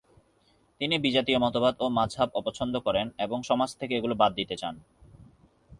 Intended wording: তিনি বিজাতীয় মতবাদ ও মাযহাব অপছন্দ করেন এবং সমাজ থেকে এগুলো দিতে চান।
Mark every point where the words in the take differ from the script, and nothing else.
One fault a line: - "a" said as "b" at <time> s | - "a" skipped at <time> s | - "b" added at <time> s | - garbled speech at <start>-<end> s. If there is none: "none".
- "বাদ" added at 4.1 s